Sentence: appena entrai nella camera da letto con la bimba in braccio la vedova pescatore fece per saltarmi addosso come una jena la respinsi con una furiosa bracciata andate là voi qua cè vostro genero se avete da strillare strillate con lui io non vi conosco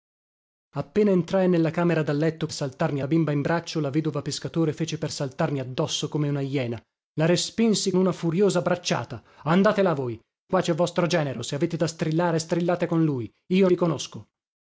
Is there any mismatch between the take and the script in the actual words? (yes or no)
yes